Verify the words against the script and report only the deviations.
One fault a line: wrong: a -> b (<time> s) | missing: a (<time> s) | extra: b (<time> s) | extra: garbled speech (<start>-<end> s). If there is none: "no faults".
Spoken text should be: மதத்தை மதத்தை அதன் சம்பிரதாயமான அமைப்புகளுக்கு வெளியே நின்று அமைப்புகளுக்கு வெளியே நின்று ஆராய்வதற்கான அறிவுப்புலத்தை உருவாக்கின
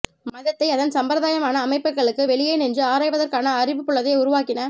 missing: மதத்தை (0.7 s)
missing: அமைப்புகளுக்கு வெளியே நின்று (2.8 s)